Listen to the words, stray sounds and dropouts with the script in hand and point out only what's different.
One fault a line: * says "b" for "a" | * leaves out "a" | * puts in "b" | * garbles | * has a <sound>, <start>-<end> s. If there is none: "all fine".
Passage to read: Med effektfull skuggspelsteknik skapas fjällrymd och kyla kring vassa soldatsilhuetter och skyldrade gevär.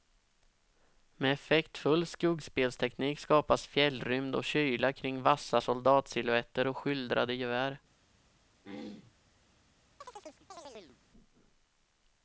* has a throat clearing, 8.6-9.2 s
* has a chirp, 10.0-11.0 s